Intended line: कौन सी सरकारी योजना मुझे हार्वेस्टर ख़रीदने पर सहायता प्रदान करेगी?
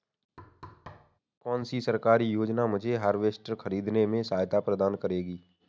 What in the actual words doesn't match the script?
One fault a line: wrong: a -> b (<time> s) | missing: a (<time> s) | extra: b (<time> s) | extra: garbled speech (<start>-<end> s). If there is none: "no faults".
wrong: पर -> में (4.1 s)